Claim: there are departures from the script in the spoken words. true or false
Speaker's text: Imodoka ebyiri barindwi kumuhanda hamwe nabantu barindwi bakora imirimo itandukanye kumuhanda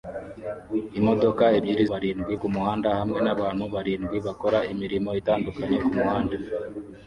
false